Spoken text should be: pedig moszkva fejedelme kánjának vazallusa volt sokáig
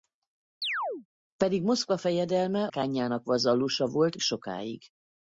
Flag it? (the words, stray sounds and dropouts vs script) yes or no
yes